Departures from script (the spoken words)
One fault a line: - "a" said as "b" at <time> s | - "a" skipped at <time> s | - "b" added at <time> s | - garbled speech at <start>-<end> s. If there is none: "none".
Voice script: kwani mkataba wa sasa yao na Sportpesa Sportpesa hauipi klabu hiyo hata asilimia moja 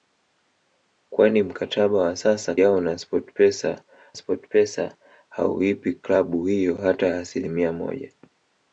none